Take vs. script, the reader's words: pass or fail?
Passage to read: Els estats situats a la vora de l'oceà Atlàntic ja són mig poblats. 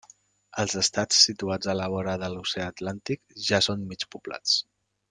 pass